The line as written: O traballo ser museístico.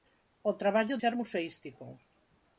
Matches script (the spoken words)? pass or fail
pass